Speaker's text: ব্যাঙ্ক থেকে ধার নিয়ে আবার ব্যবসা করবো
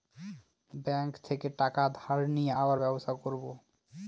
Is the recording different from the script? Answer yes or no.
yes